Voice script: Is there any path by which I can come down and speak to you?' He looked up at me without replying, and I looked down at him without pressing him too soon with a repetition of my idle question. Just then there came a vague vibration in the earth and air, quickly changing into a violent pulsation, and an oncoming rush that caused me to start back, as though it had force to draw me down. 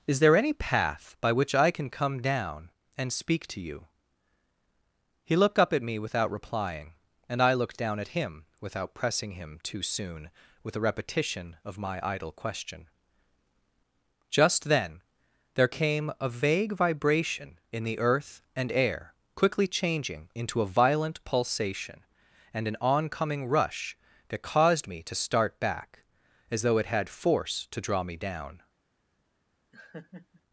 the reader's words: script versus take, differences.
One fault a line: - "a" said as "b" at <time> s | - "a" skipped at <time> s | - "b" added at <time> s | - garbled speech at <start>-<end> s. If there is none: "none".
none